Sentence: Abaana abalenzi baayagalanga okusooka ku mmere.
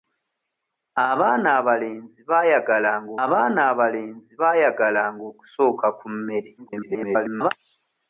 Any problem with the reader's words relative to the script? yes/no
yes